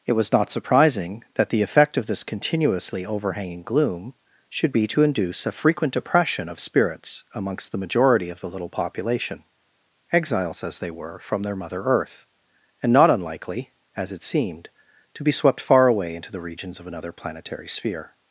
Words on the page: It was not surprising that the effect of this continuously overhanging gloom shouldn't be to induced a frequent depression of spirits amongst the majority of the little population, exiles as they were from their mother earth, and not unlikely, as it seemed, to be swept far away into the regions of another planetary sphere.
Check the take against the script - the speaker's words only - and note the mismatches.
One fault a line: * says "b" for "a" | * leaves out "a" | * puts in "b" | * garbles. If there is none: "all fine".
* says "should" for "shouldn't"
* says "induce" for "induced"